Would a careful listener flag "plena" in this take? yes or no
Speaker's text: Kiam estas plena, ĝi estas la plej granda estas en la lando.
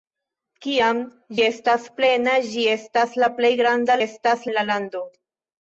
no